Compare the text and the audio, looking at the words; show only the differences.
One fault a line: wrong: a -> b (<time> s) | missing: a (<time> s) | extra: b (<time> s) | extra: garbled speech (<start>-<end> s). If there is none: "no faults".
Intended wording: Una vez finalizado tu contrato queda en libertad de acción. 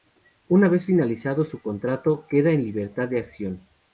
wrong: tu -> su (1.4 s)